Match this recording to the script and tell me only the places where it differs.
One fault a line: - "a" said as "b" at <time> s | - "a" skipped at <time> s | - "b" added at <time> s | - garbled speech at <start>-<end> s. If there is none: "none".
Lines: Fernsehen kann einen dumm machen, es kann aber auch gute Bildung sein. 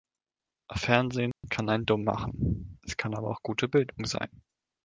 none